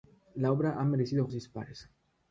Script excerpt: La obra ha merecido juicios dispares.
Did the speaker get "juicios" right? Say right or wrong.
wrong